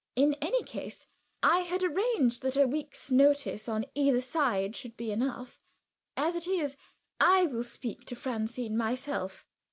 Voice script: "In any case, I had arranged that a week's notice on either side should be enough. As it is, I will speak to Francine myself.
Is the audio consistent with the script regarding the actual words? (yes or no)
yes